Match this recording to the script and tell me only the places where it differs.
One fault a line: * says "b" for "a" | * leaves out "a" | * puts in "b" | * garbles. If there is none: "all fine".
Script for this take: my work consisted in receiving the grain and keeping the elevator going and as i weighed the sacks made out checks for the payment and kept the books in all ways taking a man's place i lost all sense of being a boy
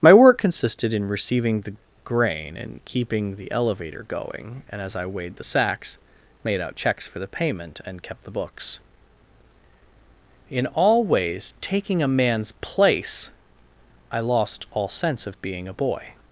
all fine